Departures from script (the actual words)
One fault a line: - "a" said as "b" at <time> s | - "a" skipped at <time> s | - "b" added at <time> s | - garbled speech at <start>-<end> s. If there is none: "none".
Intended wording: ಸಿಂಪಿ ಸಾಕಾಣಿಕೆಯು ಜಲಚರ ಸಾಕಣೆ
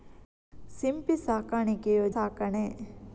- "ಜಲಚರ" skipped at 2.1 s